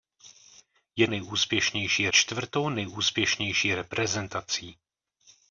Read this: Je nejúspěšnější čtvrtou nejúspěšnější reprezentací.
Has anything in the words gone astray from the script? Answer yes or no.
no